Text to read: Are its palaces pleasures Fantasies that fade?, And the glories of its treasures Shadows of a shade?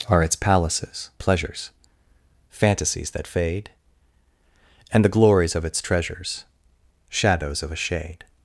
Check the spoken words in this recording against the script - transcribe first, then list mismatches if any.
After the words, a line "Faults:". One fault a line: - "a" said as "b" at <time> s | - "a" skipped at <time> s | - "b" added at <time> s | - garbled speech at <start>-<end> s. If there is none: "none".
Are its palaces pleasures Fantasies that fade?, And the glories of its treasures Shadows of a shade?
Faults:
none